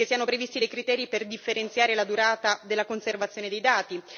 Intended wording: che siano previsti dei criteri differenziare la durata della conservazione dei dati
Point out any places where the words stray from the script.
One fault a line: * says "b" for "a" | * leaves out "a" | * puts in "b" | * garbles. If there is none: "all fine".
* puts in "per"